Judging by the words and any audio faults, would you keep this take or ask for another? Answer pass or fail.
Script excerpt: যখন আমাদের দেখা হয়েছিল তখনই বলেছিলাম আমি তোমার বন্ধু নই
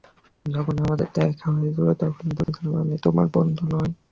fail